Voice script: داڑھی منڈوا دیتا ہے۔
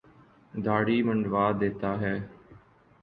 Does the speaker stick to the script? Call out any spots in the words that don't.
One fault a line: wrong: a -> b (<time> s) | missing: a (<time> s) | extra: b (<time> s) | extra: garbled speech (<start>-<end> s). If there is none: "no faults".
no faults